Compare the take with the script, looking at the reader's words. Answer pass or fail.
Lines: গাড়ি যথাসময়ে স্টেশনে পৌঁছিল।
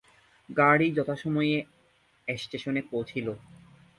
pass